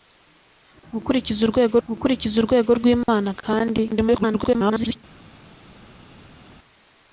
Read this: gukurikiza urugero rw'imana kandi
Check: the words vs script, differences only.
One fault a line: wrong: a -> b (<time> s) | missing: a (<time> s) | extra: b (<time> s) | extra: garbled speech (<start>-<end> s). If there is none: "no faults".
extra: gukurikiza urugero (1.9 s)
extra: garbled speech (3.9-5.0 s)